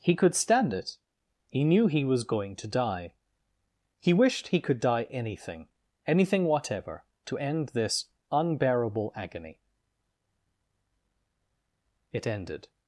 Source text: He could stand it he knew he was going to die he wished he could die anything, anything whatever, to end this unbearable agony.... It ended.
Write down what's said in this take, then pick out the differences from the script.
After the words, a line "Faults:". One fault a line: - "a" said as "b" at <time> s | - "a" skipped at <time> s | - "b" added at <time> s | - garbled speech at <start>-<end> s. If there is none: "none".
He could stand it he knew he was going to die he wished he could die anything, anything whatever, to end this unbearable agony.... It ended.
Faults:
none